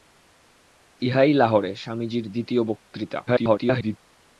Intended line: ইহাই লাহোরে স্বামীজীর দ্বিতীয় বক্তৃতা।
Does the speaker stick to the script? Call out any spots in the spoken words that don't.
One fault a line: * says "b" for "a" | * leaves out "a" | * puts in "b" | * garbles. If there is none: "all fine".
* garbles